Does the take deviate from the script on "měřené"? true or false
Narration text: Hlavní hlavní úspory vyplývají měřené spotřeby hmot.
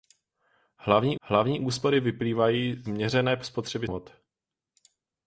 false